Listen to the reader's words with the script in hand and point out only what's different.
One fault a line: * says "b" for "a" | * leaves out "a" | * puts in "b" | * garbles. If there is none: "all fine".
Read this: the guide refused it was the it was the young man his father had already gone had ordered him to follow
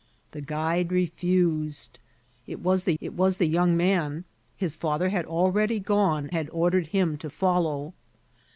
all fine